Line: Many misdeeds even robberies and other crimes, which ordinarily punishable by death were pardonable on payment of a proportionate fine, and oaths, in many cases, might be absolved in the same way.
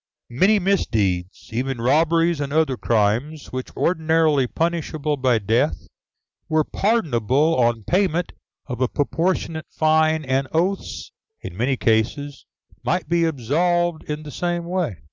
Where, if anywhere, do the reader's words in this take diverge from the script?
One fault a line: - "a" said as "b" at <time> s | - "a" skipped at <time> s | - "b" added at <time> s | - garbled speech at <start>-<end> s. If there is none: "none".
none